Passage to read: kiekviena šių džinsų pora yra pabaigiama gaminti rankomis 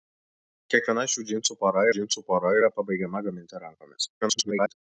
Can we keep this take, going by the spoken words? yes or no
no